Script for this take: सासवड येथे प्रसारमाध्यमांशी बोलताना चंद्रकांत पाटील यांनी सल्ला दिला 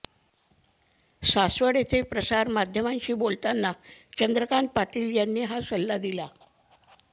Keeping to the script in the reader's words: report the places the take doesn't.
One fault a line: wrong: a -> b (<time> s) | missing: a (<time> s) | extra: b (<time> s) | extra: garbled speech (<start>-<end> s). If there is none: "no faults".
extra: हा (5.4 s)